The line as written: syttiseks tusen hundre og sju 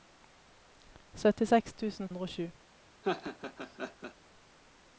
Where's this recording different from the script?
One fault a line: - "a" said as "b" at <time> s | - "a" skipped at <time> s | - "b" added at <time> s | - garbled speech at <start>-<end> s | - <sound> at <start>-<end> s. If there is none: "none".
- laugh at 3.0-4.1 s